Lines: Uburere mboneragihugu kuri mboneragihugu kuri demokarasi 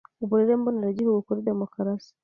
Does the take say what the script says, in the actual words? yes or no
no